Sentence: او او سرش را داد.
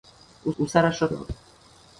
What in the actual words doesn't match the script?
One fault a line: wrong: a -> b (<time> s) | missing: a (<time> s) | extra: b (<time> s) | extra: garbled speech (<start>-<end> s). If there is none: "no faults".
no faults